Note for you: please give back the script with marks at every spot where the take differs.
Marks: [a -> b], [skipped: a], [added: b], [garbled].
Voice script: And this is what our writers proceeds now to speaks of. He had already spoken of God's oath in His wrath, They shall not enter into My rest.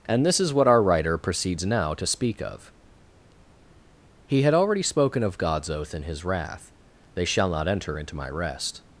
And this is what our [writers -> writer] proceeds now to [speaks -> speak] of. He had already spoken of God's oath in His wrath, They shall not enter into My rest.